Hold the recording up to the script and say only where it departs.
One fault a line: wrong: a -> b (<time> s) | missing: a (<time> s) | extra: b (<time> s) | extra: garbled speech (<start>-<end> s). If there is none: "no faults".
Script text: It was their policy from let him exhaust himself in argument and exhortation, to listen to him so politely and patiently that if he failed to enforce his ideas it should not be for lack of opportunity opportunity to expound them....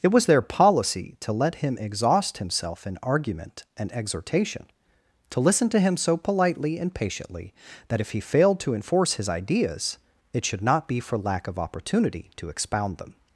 wrong: from -> to (1.2 s)
missing: opportunity (12.3 s)